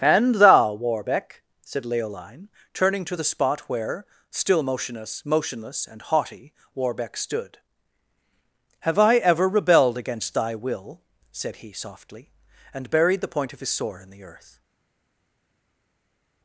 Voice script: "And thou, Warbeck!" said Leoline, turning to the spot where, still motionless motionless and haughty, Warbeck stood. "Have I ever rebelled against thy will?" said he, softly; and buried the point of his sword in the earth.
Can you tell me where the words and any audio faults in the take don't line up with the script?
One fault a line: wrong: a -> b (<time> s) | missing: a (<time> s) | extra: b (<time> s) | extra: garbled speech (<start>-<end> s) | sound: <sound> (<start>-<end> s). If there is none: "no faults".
no faults